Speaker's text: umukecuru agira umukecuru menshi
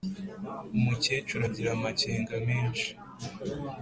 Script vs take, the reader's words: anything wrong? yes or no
yes